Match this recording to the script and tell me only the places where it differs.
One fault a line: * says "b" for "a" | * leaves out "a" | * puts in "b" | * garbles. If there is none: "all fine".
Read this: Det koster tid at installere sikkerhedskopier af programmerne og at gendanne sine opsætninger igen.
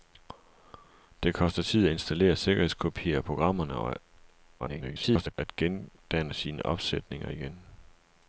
* garbles